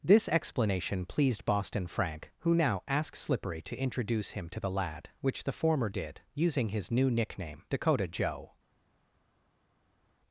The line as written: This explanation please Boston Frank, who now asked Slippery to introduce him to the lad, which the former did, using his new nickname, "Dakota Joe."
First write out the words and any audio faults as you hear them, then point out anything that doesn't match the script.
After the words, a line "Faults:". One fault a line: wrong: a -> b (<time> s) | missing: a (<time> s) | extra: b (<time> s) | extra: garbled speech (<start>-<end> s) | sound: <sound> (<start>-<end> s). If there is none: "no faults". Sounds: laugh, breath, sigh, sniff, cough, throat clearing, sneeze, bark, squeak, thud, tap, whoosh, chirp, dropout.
This explanation pleased Boston Frank, who now asked Slippery to introduce him to the lad, which the former did, using his new nickname, "Dakota Joe."
Faults:
wrong: please -> pleased (1.1 s)